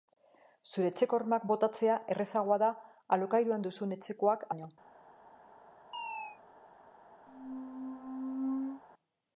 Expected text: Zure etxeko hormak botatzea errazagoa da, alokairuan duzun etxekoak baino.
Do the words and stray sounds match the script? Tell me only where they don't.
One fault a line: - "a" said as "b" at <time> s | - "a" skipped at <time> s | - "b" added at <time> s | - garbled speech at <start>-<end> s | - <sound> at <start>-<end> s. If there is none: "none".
- chirp at 5.9-6.4 s
- squeak at 7.3-8.8 s